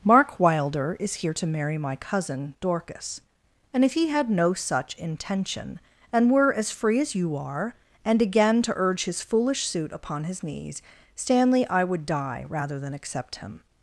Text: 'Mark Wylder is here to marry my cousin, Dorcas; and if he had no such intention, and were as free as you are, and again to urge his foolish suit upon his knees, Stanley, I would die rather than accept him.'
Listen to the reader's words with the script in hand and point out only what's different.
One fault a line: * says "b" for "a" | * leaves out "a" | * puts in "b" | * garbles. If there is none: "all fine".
all fine